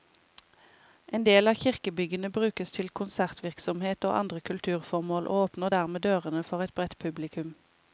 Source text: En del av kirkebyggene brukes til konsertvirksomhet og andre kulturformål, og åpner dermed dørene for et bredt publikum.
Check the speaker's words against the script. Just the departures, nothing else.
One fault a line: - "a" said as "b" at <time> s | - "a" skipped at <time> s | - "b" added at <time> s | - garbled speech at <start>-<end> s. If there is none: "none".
none